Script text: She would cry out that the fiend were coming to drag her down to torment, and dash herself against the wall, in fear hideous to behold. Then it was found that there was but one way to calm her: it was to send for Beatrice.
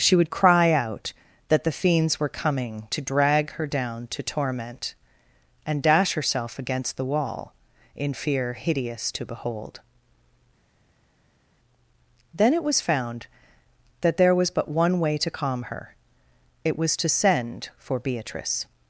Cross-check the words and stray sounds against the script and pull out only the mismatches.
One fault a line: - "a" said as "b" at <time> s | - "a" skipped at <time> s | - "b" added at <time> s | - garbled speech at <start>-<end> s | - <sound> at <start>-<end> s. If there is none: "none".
- "fiend" said as "fiends" at 1.7 s